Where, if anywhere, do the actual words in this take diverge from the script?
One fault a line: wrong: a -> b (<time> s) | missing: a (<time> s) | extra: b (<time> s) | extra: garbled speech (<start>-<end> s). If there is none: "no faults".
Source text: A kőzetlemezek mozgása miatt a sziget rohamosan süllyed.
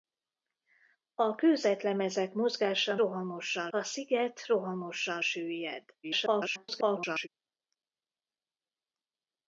wrong: miatt -> rohamosan (2.9 s)
extra: garbled speech (6.0-7.3 s)